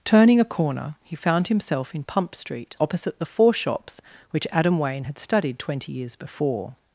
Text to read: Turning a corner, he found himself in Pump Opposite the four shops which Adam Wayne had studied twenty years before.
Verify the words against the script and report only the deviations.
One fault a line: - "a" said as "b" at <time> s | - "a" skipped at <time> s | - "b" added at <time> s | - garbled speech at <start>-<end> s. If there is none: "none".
- "Street" added at 2.3 s